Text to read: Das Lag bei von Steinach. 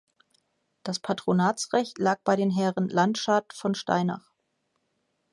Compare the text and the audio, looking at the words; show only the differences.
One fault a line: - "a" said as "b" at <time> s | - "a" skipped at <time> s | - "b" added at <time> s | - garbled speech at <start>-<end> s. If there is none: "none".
- "Patronatsrecht" added at 1.0 s
- "den Herren Landschad" added at 2.4 s